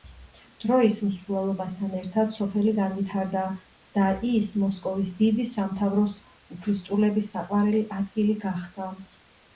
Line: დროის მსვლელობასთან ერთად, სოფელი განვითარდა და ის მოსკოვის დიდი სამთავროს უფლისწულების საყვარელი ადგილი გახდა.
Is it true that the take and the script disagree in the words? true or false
false